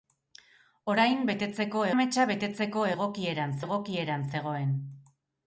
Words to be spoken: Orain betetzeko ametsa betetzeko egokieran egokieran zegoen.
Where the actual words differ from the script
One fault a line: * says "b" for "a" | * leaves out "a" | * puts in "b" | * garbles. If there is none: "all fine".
all fine